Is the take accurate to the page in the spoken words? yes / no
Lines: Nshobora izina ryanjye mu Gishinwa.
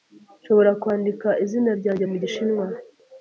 no